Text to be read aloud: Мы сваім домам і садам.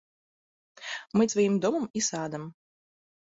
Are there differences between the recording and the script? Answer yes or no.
no